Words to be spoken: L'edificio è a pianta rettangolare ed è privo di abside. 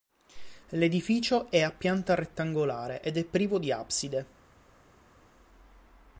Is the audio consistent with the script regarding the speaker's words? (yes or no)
yes